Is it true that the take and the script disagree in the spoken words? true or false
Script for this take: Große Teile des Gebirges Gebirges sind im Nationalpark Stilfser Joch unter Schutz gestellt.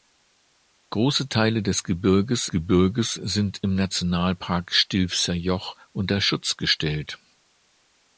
false